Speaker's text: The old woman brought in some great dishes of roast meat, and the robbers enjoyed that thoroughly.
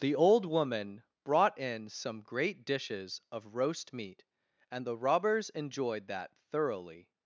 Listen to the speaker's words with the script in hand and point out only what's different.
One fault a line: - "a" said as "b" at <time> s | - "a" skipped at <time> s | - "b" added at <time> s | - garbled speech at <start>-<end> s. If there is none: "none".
none